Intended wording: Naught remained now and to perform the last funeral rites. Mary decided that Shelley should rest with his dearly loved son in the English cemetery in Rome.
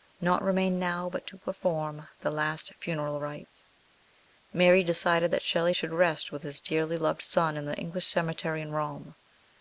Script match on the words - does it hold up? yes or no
no